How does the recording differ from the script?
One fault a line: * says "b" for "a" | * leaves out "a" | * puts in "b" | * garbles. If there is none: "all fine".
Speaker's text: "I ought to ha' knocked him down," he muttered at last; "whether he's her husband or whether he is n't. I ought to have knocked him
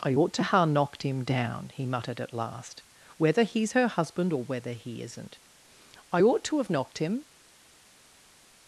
all fine